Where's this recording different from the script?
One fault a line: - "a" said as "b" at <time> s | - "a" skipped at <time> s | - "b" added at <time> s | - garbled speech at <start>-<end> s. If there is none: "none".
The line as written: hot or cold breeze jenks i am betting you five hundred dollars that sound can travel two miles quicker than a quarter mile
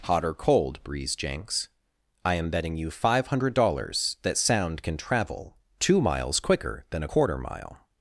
none